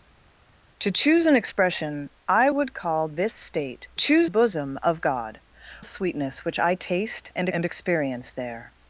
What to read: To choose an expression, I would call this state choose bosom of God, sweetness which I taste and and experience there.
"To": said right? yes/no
yes